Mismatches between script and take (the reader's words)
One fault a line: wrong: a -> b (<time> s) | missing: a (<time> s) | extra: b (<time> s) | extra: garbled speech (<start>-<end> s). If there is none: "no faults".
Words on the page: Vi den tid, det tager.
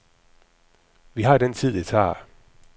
extra: har (1.2 s)